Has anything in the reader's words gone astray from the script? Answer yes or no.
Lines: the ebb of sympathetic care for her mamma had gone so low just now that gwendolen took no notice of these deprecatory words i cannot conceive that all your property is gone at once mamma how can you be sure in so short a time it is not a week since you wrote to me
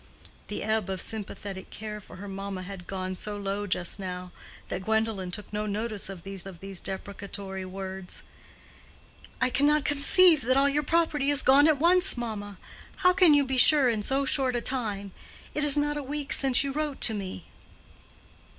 yes